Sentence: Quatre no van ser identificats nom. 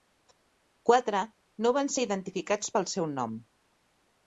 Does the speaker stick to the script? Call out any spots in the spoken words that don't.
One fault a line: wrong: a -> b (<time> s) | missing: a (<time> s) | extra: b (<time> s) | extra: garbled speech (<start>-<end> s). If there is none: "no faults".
extra: pel seu (2.8 s)